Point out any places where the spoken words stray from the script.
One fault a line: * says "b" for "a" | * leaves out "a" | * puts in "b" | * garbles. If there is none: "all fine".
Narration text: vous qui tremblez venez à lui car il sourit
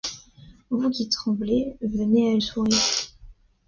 * leaves out "lui car il"